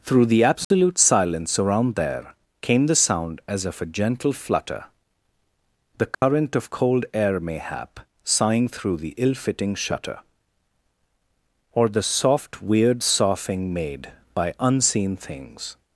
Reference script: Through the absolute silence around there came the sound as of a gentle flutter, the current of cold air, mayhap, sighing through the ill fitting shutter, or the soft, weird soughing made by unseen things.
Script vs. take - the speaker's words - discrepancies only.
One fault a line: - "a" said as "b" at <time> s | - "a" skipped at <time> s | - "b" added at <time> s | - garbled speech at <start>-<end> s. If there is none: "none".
none